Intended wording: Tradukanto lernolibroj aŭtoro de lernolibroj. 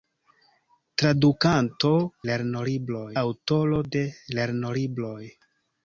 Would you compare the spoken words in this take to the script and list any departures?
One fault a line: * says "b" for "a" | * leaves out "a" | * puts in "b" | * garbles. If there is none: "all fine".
all fine